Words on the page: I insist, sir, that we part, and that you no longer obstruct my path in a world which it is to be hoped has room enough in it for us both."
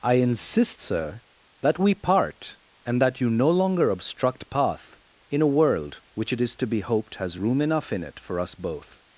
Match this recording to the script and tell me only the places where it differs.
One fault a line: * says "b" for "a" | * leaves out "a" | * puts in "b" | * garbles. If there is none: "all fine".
* leaves out "my"